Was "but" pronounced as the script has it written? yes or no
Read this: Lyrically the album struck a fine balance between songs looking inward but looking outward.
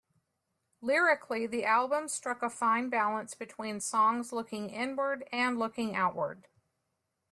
no